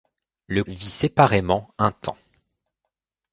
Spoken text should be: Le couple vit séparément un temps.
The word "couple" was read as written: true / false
false